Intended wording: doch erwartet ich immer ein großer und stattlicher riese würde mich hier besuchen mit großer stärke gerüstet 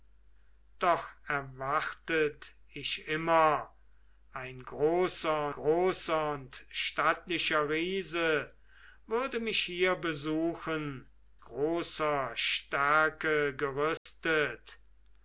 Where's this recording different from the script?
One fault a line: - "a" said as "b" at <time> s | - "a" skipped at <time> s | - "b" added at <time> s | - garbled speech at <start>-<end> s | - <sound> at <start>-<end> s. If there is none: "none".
- "großer" added at 5.5 s
- "mit" skipped at 11.1 s
- dropout at 14.0-14.1 s